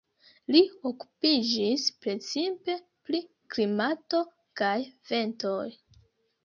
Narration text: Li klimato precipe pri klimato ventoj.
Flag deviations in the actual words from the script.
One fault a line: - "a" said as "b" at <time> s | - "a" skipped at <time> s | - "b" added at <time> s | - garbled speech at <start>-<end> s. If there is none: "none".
- "klimato" said as "okupiĝis" at 0.9 s
- "kaj" added at 4.6 s